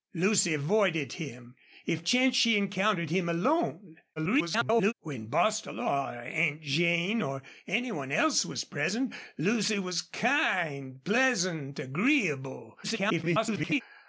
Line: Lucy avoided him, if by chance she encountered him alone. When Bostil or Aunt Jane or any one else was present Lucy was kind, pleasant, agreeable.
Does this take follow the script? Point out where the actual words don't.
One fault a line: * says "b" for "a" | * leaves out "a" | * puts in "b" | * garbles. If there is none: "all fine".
* leaves out "by"
* garbles
* garbles